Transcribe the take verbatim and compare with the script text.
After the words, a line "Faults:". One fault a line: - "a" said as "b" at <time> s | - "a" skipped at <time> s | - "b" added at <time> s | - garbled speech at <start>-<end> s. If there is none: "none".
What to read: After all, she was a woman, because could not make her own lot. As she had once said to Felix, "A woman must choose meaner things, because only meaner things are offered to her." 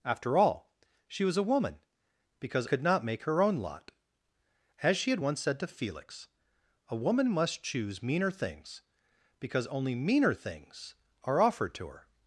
After all, she was a woman, because could not make her own lot. As she had once said to Felix, "A woman must choose meaner things, because only meaner things are offered to her."
Faults:
none